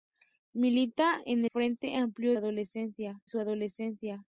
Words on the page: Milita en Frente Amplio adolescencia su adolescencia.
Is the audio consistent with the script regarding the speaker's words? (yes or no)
yes